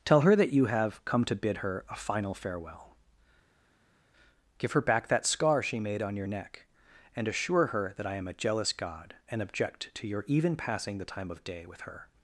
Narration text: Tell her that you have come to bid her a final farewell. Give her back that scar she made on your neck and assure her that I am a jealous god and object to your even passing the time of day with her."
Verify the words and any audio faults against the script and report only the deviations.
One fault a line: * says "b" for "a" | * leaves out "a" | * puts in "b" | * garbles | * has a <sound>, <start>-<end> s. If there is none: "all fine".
all fine